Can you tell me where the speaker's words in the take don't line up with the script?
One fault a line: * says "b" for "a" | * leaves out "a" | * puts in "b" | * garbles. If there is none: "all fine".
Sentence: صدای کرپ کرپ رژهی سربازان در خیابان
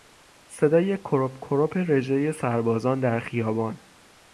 all fine